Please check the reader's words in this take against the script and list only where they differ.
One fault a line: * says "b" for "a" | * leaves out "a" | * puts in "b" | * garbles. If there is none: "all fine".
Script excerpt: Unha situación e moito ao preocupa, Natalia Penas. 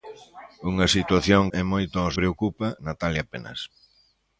all fine